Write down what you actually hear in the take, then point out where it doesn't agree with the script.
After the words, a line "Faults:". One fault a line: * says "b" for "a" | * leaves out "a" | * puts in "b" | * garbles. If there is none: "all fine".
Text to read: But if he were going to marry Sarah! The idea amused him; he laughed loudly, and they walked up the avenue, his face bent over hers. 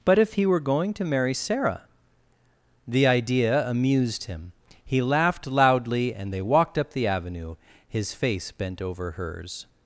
But if he were going to marry Sarah! The idea amused him; he laughed loudly, and they walked up the avenue, his face bent over hers.
Faults:
all fine